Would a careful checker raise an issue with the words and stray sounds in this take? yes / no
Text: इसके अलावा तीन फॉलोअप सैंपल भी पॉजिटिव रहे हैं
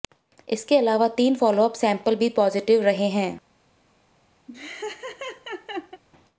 yes